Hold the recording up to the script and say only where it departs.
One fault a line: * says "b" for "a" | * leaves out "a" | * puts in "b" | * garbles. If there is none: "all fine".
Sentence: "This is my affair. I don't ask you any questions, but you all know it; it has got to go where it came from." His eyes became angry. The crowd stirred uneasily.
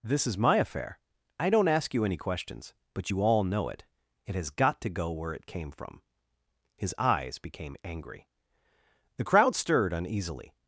all fine